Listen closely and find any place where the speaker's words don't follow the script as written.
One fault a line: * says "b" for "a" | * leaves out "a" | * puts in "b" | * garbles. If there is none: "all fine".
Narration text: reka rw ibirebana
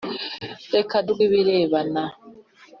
all fine